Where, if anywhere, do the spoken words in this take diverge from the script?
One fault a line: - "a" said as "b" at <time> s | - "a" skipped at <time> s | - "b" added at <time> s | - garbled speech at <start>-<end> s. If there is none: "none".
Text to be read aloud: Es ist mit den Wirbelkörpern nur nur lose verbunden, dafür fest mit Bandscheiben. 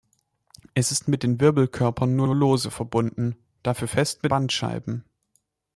none